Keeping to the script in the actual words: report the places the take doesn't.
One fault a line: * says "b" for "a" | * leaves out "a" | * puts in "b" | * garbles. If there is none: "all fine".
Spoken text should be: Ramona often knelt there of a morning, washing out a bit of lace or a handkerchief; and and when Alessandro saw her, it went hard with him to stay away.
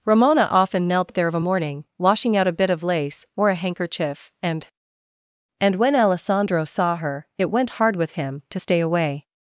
all fine